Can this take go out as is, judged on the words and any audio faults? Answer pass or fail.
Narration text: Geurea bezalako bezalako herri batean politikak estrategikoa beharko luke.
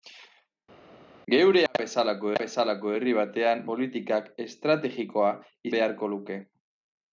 pass